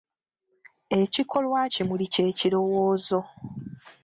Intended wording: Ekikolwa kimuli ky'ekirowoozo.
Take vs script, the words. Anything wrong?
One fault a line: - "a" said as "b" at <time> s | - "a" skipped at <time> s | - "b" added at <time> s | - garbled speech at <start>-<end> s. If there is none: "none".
none